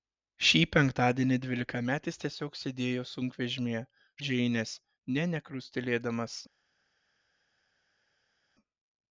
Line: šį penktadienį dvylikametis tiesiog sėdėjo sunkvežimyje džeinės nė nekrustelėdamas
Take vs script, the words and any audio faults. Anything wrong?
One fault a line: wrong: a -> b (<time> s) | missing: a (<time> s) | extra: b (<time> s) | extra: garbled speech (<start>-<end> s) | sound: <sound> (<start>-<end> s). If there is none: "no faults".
no faults